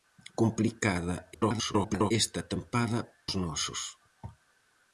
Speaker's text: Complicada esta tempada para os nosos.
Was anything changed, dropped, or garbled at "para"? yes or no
yes